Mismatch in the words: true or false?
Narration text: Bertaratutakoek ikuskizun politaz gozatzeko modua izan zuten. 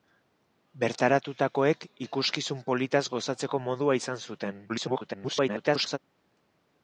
true